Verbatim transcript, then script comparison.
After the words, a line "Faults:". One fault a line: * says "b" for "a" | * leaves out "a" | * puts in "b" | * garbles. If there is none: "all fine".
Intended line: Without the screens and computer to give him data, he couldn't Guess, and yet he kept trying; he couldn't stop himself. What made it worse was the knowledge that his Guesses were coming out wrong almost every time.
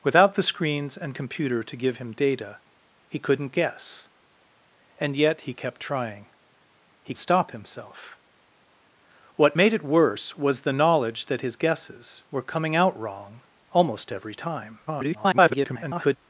Without the screens and computer to give him data, he couldn't Guess, and yet he kept trying; he stop himself. What made it worse was the knowledge that his Guesses were coming out wrong almost every time. [garbled]
Faults:
* leaves out "couldn't"
* garbles